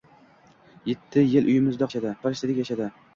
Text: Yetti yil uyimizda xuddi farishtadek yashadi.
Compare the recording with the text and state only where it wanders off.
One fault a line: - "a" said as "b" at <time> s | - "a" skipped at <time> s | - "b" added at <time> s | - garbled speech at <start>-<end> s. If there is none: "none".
- "xuddi" said as "yashadi" at 1.9 s